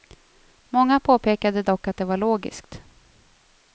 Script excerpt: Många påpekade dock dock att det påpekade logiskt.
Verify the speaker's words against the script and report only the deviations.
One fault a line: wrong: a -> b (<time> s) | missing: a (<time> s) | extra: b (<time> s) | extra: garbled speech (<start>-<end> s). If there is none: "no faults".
missing: dock (1.9 s)
wrong: påpekade -> var (2.0 s)